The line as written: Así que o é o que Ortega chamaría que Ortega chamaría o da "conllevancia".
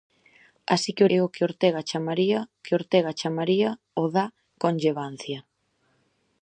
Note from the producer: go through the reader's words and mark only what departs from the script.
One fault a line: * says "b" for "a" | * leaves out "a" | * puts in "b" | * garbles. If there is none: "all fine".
all fine